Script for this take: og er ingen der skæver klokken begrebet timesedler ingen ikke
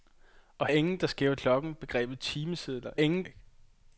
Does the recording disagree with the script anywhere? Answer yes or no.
no